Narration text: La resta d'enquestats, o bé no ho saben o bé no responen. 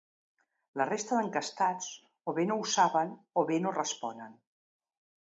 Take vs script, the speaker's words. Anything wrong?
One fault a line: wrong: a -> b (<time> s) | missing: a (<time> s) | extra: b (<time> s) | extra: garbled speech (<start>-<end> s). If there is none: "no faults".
no faults